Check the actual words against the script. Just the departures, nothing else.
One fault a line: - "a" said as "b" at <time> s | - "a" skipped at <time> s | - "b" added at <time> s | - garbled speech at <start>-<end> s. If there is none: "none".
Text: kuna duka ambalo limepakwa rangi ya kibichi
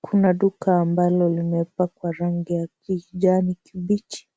- "kijani" added at 2.8 s